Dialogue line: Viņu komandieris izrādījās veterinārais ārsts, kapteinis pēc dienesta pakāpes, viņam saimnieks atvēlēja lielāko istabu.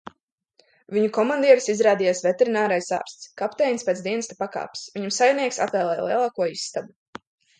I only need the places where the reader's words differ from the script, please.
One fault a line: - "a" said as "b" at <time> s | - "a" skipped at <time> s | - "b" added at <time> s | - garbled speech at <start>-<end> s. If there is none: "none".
none